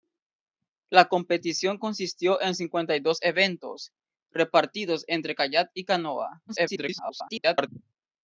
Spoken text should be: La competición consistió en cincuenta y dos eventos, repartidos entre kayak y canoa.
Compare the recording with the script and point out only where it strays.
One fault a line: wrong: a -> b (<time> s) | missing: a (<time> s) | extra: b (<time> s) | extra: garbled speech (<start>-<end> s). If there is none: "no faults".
extra: garbled speech (6.5-7.7 s)